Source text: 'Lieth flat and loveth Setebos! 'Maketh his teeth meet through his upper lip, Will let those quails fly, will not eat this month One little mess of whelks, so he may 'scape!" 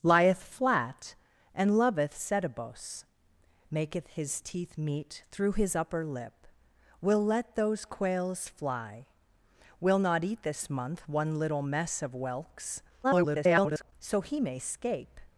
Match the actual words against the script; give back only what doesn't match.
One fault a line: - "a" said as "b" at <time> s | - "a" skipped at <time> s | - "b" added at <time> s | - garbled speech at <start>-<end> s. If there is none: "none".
- garbled speech at 13.0-13.9 s